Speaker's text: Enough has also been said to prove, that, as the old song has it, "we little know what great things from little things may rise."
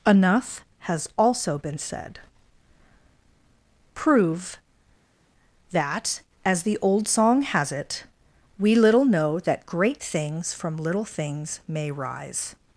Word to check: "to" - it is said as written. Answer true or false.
false